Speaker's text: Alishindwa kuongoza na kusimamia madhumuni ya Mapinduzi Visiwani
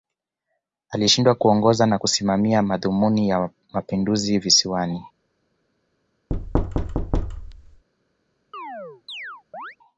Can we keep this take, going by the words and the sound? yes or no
no